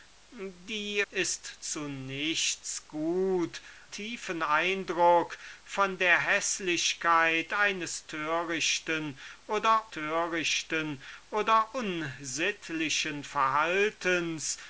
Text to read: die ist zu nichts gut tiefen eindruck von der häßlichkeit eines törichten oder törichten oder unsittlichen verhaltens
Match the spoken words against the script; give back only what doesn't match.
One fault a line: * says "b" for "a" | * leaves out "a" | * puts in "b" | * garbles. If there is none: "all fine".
all fine